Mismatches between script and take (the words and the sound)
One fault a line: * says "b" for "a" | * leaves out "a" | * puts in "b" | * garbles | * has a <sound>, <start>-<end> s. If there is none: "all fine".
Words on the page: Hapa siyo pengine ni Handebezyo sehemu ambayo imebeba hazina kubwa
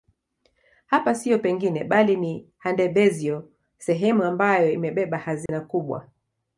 * puts in "bali"
* has a dropout, 5.5-5.5 s